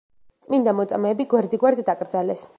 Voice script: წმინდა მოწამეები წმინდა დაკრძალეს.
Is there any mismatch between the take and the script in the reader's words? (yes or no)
yes